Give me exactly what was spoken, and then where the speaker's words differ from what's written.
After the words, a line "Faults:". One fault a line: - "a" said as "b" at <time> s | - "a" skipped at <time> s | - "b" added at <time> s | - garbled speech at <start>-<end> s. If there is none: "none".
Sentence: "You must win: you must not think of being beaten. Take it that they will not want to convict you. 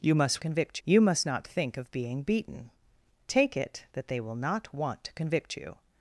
"You must convict: you must not think of being beaten. Take it that they will not want to convict you.
Faults:
- "win" said as "convict" at 0.4 s